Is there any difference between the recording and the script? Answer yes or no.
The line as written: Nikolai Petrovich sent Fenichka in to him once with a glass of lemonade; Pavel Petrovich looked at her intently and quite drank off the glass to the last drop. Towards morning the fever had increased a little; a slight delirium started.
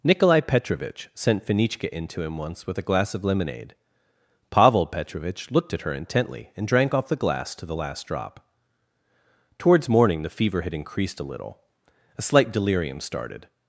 yes